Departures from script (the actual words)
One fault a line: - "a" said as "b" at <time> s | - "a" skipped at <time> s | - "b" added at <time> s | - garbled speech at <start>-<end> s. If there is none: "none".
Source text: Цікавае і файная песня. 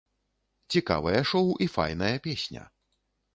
- "шоў" added at 1.3 s